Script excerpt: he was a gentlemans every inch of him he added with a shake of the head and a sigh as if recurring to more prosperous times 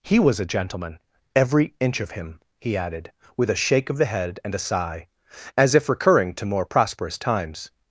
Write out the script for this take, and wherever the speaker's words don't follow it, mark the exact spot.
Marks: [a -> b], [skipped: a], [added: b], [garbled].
he was a [gentlemans -> gentleman] every inch of him he added with a shake of the head and a sigh as if recurring to more prosperous times